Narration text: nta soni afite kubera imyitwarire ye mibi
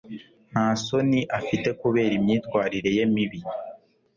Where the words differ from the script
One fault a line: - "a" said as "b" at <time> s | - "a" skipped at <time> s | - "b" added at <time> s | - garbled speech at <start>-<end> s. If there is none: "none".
none